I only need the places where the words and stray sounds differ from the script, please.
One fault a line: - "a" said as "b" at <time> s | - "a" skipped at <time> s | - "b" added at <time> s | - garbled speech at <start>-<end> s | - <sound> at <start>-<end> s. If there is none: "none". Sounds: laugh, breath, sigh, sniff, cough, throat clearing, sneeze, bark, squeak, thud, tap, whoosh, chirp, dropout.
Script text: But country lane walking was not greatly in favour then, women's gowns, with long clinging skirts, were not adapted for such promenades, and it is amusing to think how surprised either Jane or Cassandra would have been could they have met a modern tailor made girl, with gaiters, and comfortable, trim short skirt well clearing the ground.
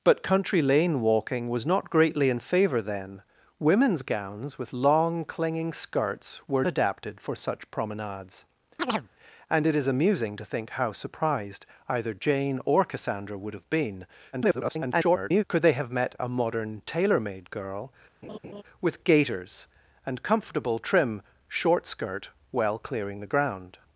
- "not" skipped at 6.7 s
- chirp at 8.8-9.1 s
- garbled speech at 14.3-15.4 s
- laugh at 18.2-18.6 s